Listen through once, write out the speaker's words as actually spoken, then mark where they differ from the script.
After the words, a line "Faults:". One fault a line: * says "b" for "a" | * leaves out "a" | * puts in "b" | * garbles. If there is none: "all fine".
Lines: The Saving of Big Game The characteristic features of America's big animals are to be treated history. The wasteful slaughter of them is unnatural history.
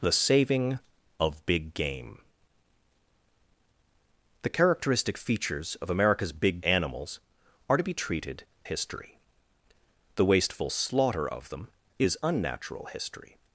The Saving of Big Game The characteristic features of America's big animals are to be treated history. The wasteful slaughter of them is unnatural history.
Faults:
all fine